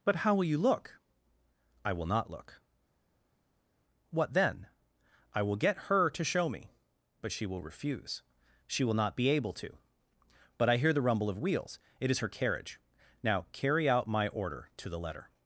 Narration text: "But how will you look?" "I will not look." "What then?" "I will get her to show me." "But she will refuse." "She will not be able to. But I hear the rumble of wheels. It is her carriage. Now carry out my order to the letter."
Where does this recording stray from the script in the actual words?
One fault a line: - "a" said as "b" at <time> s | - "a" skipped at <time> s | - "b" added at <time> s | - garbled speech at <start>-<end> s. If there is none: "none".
none